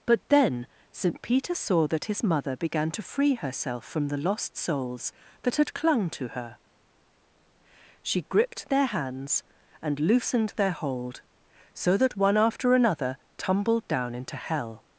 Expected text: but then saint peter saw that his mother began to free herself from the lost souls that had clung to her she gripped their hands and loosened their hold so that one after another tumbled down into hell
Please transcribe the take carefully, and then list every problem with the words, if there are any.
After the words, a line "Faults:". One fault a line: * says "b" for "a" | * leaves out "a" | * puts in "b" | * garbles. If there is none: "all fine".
but then saint peter saw that his mother began to free herself from the lost souls that had clung to her she gripped their hands and loosened their hold so that one after another tumbled down into hell
Faults:
all fine